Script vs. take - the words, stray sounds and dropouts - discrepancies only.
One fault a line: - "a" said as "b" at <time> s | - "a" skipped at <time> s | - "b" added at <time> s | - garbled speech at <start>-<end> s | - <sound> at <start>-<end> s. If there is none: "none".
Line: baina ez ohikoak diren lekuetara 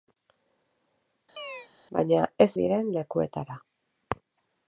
- chirp at 1.4-1.7 s
- "ohikoak" skipped at 2.5 s